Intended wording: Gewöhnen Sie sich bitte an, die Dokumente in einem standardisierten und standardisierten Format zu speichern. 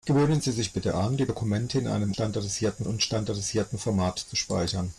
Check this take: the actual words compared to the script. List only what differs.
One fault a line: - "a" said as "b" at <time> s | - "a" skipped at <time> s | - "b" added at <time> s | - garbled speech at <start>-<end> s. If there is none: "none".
none